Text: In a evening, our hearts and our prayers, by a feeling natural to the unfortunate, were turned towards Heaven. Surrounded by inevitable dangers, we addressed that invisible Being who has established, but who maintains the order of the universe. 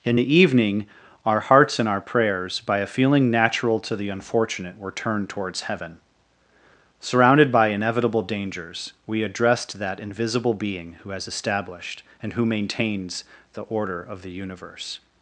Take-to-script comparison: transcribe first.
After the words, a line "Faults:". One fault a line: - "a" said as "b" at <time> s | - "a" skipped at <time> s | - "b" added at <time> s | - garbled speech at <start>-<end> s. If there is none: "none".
In the evening, our hearts and our prayers, by a feeling natural to the unfortunate, were turned towards Heaven. Surrounded by inevitable dangers, we addressed that invisible Being who has established, and who maintains the order of the universe.
Faults:
- "a" said as "the" at 0.1 s
- "but" said as "and" at 12.2 s